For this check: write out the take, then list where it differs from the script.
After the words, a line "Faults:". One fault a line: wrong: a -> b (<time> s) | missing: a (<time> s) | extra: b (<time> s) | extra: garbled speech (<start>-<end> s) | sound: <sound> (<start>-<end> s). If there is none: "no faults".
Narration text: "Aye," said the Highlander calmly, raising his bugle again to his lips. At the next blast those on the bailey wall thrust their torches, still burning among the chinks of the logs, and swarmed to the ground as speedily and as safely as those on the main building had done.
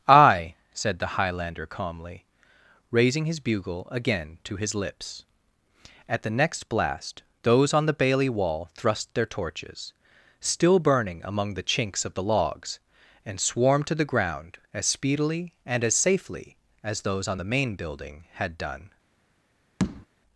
"Aye," said the Highlander calmly, raising his bugle again to his lips. At the next blast those on the bailey wall thrust their torches, still burning among the chinks of the logs, and swarmed to the ground as speedily and as safely as those on the main building had done.
Faults:
sound: tap (19.8-20.1 s)